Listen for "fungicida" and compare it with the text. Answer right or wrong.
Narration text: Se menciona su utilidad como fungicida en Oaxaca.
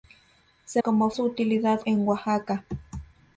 wrong